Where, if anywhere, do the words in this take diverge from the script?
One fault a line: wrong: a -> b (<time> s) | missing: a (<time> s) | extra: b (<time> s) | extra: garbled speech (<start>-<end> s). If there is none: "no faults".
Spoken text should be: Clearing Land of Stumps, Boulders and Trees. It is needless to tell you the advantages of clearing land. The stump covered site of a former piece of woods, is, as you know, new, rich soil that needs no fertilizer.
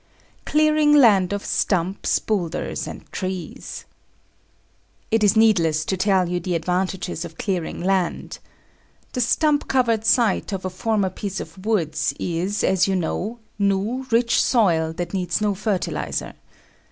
no faults